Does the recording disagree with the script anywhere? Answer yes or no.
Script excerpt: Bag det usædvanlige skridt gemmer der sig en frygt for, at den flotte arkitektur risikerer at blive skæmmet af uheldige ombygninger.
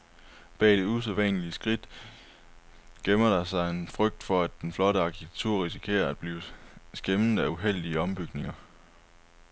no